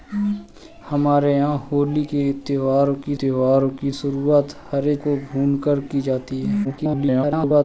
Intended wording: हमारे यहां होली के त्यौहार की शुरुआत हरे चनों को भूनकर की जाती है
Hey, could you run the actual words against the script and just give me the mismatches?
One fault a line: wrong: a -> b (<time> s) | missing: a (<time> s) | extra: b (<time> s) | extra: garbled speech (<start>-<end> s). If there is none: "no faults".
extra: त्यौहार की (3.2 s)
missing: चनों (5.0 s)
extra: garbled speech (6.6-7.6 s)